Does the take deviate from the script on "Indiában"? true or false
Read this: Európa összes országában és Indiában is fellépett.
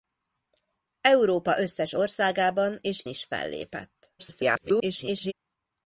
true